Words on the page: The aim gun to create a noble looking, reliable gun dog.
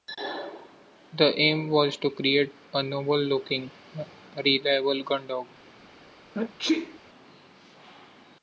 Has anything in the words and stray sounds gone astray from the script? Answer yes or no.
yes